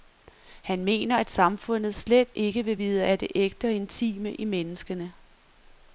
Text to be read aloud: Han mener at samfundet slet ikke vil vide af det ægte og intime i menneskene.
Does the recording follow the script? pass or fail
pass